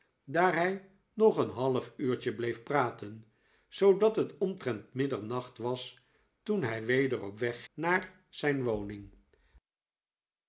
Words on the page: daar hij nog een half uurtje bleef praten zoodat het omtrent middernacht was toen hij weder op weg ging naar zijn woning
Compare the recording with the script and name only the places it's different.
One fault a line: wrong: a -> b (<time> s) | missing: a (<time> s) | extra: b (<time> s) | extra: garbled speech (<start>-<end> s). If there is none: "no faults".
missing: ging (7.6 s)